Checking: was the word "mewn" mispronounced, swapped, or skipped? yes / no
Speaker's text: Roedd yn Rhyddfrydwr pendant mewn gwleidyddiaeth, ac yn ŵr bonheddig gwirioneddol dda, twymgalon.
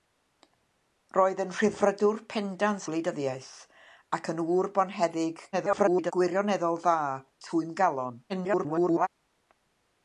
yes